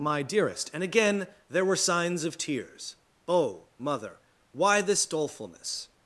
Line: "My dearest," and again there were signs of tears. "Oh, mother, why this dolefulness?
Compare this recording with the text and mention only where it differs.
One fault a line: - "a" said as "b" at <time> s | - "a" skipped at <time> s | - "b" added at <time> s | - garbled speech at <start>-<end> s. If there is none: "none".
none